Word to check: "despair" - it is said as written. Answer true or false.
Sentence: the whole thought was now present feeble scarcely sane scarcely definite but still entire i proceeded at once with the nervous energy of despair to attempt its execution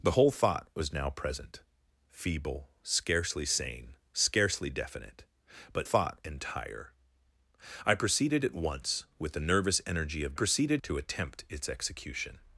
false